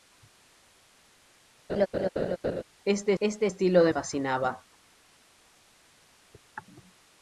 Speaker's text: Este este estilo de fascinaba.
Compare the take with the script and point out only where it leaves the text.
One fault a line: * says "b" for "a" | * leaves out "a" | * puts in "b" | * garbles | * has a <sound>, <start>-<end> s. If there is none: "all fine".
* has a laugh, 1.7-2.6 s